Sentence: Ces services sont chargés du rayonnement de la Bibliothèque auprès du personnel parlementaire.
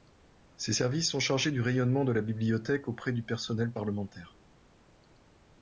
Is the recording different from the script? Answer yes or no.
no